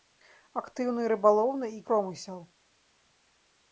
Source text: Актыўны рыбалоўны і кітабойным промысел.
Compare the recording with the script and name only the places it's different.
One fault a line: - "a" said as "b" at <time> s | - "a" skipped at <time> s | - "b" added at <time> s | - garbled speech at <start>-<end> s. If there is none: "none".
- "кітабойным" skipped at 1.8 s